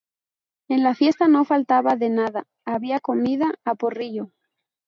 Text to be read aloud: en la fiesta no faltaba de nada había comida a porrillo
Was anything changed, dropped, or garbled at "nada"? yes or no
no